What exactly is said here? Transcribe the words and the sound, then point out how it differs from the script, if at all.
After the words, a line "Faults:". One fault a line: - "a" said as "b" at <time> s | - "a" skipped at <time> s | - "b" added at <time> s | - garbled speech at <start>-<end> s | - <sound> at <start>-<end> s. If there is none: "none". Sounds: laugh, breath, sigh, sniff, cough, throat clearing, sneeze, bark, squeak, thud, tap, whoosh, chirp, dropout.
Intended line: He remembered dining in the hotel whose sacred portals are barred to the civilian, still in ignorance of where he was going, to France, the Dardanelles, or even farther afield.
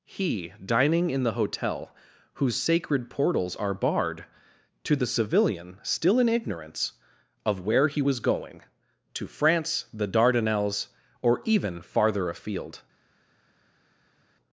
He dining in the hotel whose sacred portals are barred to the civilian, still in ignorance of where he was going, to France, the Dardanelles, or even farther afield.
Faults:
- "remembered" skipped at 0.5 s